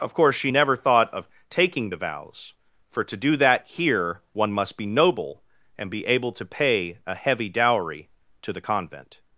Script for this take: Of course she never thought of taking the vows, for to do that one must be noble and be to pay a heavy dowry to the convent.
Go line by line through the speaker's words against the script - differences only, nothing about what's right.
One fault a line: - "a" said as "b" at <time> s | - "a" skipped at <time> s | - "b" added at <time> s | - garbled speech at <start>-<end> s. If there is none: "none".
- "here" added at 3.7 s
- "able" added at 6.1 s